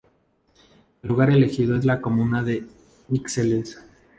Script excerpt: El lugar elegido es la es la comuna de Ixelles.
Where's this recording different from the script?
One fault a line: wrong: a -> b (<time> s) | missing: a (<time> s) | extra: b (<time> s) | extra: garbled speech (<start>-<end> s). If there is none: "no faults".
missing: es la (2.0 s)